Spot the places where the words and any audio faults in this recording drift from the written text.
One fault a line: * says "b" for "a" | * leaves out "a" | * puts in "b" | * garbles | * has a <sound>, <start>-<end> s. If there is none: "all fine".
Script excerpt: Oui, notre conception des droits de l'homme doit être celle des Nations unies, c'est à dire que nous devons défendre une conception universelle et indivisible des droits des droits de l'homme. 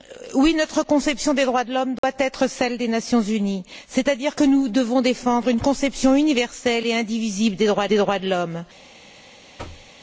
* has a dropout, 2.0-2.0 s
* has a thud, 9.6-9.9 s